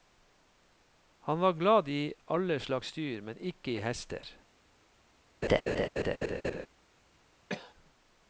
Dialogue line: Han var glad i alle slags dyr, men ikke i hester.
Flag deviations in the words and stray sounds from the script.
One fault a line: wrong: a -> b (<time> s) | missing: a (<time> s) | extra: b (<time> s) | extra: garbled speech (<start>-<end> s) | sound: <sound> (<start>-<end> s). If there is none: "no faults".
sound: laugh (5.4-6.7 s)
sound: cough (7.5-7.7 s)